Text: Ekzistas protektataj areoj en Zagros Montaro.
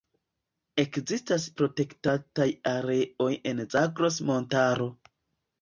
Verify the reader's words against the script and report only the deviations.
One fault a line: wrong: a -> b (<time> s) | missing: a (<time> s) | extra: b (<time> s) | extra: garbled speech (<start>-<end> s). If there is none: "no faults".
no faults